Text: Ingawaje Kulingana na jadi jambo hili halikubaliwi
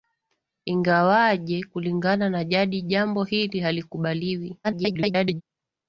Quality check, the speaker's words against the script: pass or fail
fail